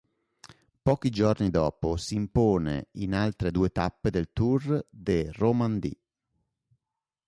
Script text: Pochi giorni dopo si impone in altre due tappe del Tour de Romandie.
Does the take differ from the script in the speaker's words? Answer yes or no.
no